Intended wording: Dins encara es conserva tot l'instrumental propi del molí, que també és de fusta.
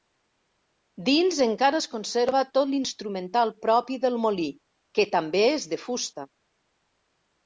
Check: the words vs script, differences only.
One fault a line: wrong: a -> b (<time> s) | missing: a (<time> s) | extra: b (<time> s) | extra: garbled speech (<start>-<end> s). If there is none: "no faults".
no faults